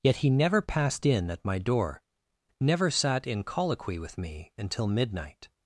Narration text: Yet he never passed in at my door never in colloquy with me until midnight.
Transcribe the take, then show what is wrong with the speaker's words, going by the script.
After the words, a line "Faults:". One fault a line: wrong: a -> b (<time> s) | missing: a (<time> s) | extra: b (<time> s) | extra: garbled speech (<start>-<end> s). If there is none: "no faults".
Yet he never passed in at my door never sat in colloquy with me until midnight.
Faults:
extra: sat (2.9 s)